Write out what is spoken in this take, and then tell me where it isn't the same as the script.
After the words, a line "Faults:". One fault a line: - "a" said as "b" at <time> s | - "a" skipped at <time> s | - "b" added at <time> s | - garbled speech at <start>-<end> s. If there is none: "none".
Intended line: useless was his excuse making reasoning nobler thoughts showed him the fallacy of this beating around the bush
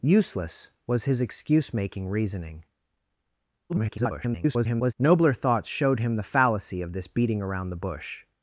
useless was his excuse making reasoning [garbled] nobler thoughts showed him the fallacy of this beating around the bush
Faults:
- garbled speech at 3.7-4.9 s